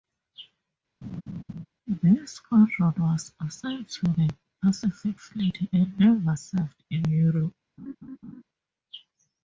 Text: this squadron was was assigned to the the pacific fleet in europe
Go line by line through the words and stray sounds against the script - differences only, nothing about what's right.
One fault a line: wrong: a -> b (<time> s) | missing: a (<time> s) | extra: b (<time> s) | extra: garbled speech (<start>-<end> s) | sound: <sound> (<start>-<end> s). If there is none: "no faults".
sound: laugh (1.0-1.7 s)
missing: was (3.3 s)
missing: the (4.3 s)
extra: and never served (5.7 s)
sound: laugh (7.8-8.4 s)